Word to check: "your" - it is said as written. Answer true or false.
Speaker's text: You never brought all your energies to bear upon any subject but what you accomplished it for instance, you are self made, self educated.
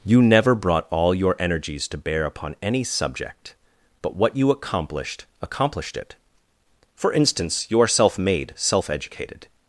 true